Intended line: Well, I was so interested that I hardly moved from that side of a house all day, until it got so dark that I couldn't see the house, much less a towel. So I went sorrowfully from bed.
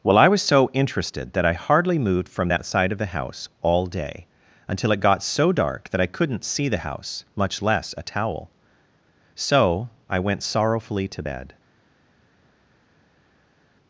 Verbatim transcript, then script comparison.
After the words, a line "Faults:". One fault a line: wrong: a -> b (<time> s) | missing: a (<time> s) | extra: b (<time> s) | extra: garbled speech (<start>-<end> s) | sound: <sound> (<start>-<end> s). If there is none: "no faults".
Well, I was so interested that I hardly moved from that side of the house all day, until it got so dark that I couldn't see the house, much less a towel. So I went sorrowfully to bed.
Faults:
wrong: a -> the (3.0 s)
wrong: from -> to (11.1 s)